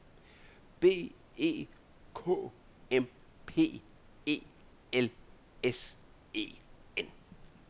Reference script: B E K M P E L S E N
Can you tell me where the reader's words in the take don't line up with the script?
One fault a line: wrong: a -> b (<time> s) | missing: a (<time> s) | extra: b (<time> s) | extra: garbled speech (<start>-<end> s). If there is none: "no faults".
no faults